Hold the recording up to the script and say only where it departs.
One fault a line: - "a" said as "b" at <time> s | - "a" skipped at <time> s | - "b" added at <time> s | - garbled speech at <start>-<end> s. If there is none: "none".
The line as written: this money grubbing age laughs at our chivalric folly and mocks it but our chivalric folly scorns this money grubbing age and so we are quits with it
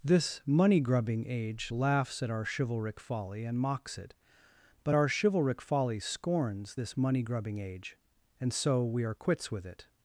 none